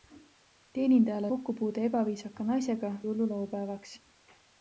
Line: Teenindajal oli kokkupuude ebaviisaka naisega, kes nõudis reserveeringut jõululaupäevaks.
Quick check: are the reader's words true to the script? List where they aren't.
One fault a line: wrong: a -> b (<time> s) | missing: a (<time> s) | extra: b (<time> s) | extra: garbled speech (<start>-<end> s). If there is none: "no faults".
missing: oli (1.3 s)
missing: kes nõudis reserveeringut (2.9 s)